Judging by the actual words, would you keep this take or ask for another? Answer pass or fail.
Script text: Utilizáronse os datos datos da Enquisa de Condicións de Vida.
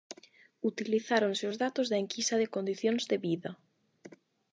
fail